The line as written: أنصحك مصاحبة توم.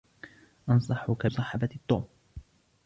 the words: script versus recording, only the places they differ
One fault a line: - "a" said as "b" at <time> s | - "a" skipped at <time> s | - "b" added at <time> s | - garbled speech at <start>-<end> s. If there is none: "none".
none